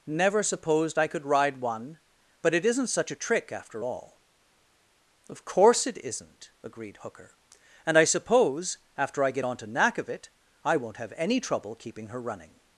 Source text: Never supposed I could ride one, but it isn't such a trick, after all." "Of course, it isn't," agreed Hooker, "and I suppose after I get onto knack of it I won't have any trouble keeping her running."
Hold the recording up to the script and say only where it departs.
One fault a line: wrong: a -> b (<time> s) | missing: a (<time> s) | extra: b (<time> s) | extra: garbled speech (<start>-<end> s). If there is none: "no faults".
no faults